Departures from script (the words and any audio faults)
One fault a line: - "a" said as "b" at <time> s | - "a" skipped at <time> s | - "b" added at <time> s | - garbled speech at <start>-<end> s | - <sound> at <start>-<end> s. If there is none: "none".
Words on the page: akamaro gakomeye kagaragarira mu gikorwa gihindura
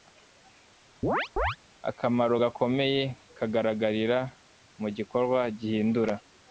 - chirp at 1.0-1.6 s